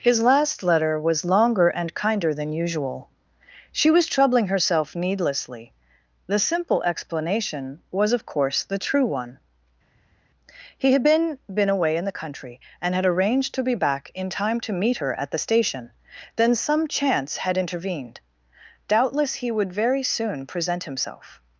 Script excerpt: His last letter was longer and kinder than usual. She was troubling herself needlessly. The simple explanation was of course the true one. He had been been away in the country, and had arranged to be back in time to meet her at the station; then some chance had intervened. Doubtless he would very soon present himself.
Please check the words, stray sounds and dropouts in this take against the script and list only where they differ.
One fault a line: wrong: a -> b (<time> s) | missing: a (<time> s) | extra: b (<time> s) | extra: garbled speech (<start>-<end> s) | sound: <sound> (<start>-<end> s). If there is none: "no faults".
no faults